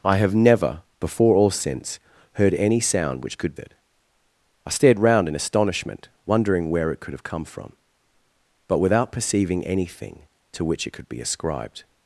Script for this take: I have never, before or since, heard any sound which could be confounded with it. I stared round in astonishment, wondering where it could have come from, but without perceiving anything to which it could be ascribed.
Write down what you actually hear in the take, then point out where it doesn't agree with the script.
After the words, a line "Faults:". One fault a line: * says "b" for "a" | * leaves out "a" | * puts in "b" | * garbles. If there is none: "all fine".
I have never, before or since, heard any sound which could it. I stared round in astonishment, wondering where it could have come from, but without perceiving anything to which it could be ascribed.
Faults:
* leaves out "be confounded with"